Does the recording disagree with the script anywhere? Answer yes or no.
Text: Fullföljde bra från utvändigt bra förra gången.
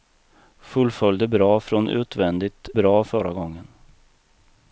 no